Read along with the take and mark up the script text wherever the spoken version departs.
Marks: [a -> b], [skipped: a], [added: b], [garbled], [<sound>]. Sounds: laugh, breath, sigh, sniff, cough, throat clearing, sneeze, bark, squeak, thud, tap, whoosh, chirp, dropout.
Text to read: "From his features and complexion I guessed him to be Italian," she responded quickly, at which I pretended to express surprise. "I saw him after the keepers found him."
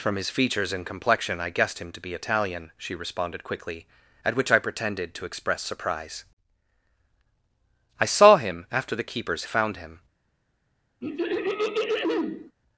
"From his features and complexion I guessed him to be Italian," she responded quickly, at which I pretended to express surprise. "I saw him after the keepers found him." [throat clearing]